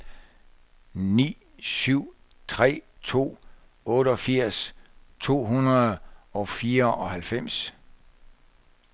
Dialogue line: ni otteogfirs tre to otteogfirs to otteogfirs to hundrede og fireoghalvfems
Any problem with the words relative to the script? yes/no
yes